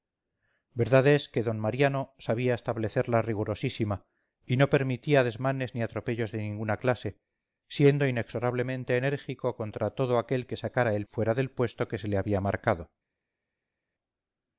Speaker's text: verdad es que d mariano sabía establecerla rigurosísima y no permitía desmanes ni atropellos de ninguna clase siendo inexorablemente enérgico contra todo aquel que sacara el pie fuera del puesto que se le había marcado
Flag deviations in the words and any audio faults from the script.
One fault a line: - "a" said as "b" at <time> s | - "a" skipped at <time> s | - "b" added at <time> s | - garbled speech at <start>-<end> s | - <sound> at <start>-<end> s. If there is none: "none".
- "pie" skipped at 11.1 s